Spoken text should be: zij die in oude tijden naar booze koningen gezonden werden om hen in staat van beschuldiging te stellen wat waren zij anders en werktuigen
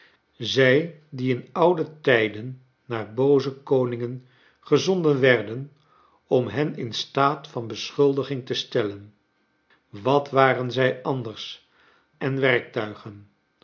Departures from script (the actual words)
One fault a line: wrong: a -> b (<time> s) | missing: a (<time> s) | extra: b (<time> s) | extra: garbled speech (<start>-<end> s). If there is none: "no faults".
no faults